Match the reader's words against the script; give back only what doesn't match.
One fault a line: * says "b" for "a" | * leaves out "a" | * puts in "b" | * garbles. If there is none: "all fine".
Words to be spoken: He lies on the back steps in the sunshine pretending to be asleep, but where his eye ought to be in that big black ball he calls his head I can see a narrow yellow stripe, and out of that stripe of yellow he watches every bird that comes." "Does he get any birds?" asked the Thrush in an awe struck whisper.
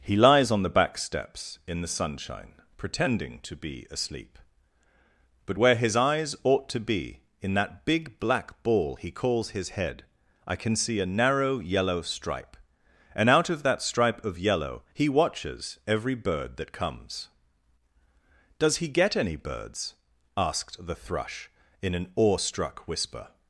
* says "eyes" for "eye"